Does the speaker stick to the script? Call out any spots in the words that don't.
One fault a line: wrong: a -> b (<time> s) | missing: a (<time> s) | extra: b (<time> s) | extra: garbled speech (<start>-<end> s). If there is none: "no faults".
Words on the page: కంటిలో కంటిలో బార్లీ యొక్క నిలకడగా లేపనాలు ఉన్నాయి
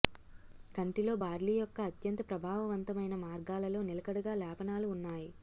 missing: కంటిలో (1.1 s)
extra: అత్యంత ప్రభావవంతమైన మార్గాలలో (1.9 s)